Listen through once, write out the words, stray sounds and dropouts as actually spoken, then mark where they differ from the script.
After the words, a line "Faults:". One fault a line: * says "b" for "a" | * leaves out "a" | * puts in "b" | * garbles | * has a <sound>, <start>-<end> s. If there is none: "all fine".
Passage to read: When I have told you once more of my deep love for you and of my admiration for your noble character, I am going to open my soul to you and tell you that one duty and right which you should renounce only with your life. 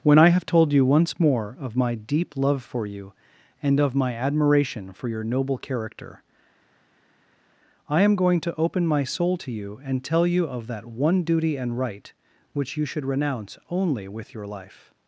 When I have told you once more of my deep love for you and of my admiration for your noble character, I am going to open my soul to you and tell you of that one duty and right which you should renounce only with your life.
Faults:
* puts in "of"